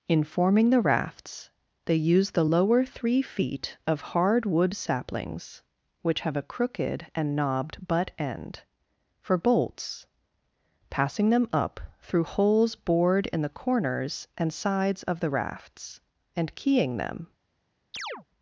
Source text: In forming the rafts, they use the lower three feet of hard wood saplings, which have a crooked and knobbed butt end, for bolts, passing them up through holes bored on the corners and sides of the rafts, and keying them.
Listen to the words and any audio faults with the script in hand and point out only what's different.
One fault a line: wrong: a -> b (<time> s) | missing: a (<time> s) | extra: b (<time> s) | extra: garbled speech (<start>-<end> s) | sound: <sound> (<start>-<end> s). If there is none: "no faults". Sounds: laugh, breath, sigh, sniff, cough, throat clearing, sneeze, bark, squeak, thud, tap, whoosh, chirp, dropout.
wrong: on -> in (13.3 s)
sound: chirp (17.9-18.2 s)